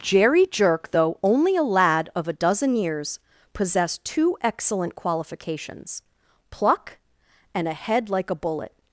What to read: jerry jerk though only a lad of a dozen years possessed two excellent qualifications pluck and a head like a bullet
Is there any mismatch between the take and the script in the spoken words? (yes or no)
no